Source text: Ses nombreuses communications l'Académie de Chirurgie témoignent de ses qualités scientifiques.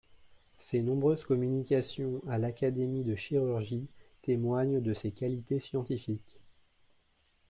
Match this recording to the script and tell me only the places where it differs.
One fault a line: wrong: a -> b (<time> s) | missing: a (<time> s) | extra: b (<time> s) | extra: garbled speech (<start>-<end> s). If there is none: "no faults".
extra: à (2.3 s)